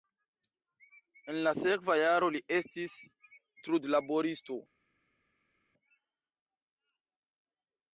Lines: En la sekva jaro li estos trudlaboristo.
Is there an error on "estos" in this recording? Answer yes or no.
yes